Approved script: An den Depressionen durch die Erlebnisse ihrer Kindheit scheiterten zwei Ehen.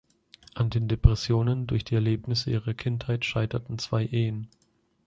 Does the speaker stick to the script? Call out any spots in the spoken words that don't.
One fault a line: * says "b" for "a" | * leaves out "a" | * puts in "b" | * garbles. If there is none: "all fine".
all fine